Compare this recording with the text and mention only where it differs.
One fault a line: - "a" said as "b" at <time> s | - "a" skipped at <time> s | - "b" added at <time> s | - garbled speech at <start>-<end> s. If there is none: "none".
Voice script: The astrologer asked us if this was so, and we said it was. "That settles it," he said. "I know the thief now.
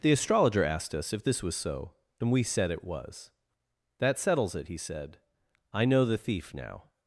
none